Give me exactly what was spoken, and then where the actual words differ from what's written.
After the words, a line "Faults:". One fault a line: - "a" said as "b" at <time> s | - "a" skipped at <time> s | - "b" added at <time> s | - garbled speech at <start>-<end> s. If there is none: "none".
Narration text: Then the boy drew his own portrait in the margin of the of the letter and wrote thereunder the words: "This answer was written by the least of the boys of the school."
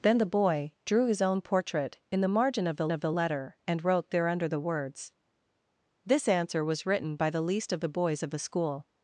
Then the boy drew his own portrait in the margin of the of the letter and wrote thereunder the words: "This answer was written by the least of the boys of the school."
Faults:
none